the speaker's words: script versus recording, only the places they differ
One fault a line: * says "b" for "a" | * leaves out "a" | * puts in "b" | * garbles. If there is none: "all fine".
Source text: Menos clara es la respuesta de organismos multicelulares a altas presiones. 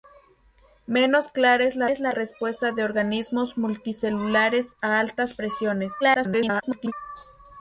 * puts in "es la"
* garbles